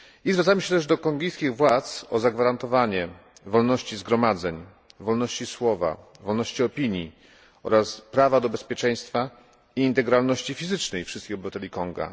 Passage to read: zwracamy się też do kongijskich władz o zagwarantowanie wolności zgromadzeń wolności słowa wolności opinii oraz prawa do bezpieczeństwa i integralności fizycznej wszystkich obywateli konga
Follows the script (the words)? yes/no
yes